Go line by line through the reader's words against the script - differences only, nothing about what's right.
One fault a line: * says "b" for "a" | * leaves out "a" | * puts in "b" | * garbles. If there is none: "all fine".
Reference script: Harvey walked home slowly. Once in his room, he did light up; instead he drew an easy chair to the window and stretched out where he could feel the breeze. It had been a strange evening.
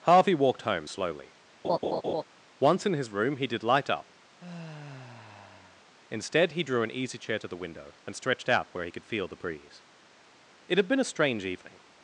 all fine